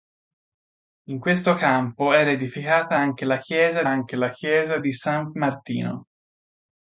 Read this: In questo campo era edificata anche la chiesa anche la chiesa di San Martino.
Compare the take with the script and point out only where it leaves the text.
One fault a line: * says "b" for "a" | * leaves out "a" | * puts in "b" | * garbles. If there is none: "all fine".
all fine